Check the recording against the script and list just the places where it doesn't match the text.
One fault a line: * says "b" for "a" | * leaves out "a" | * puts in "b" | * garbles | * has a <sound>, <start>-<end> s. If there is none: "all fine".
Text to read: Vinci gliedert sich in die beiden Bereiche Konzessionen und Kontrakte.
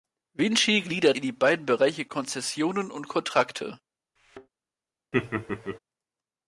* leaves out "sich"
* has a thud, 4.2-4.5 s
* has a laugh, 5.1-5.8 s